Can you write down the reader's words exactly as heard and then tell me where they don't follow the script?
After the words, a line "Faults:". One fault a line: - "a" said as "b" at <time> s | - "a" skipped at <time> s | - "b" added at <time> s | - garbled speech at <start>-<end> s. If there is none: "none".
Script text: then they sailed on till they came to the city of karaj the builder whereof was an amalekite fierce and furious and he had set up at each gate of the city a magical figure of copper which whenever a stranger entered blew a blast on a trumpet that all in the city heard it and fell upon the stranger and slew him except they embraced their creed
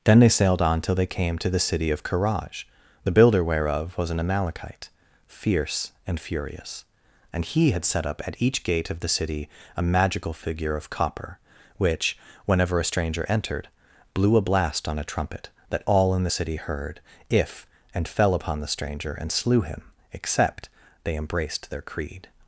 then they sailed on till they came to the city of karaj the builder whereof was an amalekite fierce and furious and he had set up at each gate of the city a magical figure of copper which whenever a stranger entered blew a blast on a trumpet that all in the city heard if and fell upon the stranger and slew him except they embraced their creed
Faults:
- "it" said as "if" at 17.3 s